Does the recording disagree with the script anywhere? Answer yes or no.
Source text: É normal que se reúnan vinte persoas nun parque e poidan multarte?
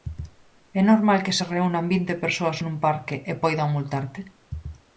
no